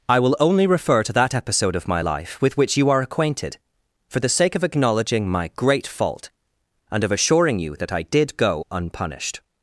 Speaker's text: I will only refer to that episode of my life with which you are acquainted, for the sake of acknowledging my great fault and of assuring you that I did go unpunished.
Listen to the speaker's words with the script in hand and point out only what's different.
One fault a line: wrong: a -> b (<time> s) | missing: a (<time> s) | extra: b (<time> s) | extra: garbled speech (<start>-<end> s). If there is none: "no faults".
no faults